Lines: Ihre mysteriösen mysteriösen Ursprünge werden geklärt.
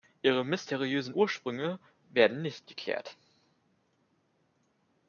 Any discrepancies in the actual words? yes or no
yes